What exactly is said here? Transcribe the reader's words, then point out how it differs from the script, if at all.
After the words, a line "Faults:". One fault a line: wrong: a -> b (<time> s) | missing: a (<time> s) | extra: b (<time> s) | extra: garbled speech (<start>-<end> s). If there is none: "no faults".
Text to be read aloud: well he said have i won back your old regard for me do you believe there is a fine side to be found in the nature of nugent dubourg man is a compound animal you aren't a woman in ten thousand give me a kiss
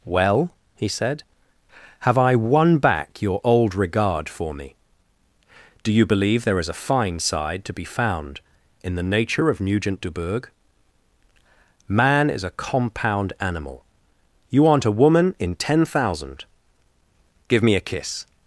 well he said have i won back your old regard for me do you believe there is a fine side to be found in the nature of nugent dubourg man is a compound animal you aren't a woman in ten thousand give me a kiss
Faults:
no faults